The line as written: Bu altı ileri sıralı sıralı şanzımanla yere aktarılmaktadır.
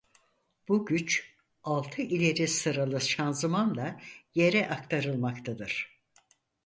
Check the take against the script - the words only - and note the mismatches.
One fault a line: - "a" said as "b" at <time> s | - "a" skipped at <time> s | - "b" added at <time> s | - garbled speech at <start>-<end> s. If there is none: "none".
- "güç" added at 0.8 s
- "sıralı" skipped at 3.0 s